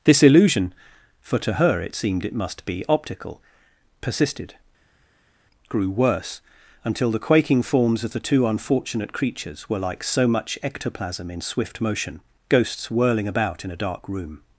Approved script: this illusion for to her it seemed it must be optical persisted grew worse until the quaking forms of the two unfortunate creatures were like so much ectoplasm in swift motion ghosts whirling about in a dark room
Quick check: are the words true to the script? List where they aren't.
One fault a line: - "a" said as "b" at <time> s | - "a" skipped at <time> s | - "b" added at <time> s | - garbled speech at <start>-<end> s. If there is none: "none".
none